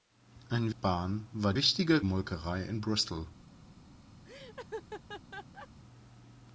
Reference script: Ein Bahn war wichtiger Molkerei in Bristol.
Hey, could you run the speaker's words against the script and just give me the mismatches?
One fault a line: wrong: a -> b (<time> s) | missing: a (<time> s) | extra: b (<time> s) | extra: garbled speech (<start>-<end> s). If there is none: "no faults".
no faults